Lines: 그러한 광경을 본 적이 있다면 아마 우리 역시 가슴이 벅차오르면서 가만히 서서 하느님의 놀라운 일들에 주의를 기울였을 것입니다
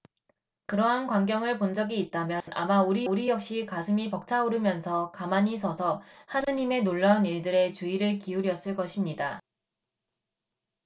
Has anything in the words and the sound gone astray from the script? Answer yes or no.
yes